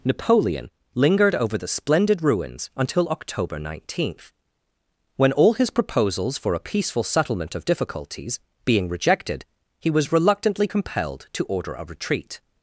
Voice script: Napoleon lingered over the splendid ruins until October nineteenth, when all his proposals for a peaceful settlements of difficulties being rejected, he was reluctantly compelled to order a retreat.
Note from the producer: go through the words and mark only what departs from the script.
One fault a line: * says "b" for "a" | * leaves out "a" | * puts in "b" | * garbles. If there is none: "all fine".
* says "settlement" for "settlements"